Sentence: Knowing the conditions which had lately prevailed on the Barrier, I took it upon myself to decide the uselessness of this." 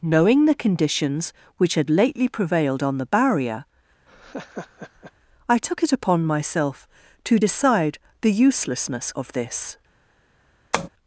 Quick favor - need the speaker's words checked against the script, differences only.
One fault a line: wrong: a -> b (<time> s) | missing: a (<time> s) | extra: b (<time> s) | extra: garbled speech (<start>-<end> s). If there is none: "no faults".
no faults